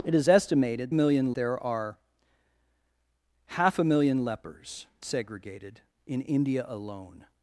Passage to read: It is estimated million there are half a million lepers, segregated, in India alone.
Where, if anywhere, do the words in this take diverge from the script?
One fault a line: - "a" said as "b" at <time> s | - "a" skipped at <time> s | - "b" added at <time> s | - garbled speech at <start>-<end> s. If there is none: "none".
none